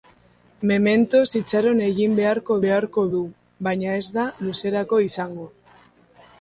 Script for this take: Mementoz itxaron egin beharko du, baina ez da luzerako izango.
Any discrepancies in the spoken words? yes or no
yes